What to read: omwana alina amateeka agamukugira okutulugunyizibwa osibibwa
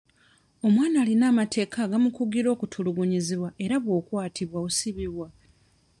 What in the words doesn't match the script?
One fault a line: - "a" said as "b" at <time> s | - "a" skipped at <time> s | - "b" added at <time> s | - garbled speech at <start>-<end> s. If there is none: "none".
- "era bw'okwatibwa" added at 3.6 s